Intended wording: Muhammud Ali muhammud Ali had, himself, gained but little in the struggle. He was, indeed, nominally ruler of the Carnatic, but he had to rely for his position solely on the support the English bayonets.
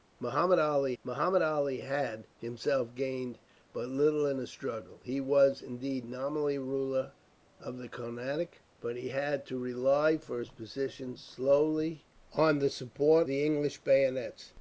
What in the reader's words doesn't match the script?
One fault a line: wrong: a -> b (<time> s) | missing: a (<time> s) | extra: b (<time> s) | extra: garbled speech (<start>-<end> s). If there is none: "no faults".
no faults